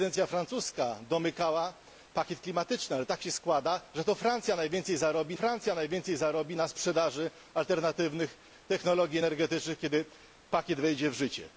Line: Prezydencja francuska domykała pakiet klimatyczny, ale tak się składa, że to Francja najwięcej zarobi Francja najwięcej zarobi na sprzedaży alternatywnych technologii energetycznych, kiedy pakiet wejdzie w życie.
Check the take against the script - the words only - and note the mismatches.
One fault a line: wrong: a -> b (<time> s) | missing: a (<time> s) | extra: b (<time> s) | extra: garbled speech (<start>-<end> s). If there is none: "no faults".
no faults